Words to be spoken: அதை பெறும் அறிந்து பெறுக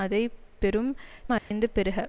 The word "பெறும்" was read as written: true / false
true